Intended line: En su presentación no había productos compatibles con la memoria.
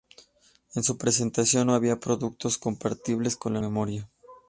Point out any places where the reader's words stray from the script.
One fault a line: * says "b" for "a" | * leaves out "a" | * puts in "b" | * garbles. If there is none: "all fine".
all fine